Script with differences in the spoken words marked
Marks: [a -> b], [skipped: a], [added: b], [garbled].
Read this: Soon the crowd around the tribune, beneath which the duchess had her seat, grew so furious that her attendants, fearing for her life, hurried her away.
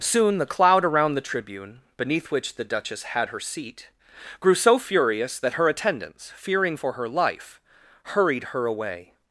Soon the [crowd -> cloud] around the tribune, beneath which the duchess had her seat, grew so furious that her attendants, fearing for her life, hurried her away.